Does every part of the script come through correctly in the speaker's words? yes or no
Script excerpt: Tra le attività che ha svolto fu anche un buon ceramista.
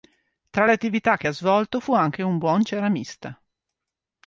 yes